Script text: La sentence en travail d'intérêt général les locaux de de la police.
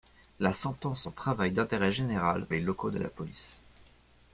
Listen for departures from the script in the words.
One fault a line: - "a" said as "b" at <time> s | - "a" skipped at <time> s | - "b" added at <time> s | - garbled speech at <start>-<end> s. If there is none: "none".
none